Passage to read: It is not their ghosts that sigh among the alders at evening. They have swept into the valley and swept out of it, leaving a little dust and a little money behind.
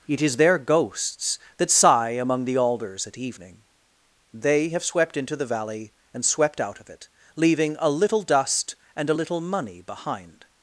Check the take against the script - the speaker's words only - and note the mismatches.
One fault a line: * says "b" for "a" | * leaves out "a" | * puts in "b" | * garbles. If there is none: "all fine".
* leaves out "not"